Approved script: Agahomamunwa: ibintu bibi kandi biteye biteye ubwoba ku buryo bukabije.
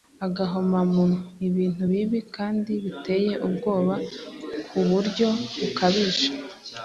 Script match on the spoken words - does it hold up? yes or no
no